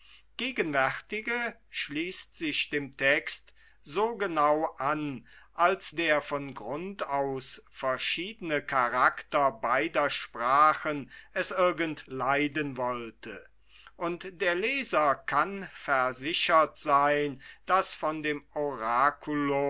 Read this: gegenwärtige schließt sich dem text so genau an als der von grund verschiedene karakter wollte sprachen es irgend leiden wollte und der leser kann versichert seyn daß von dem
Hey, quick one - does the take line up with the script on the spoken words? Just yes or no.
no